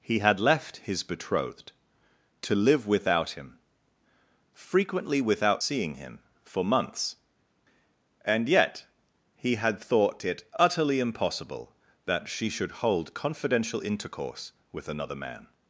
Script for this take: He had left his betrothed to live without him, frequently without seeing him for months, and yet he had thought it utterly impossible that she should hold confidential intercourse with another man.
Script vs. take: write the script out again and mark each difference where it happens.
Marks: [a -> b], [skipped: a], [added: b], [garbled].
He had left his betrothed to live without him, frequently without seeing him for months, and yet he had thought it utterly impossible that she should hold confidential intercourse with another man.